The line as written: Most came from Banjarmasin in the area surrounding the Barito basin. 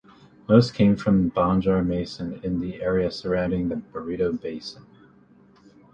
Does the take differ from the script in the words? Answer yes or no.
no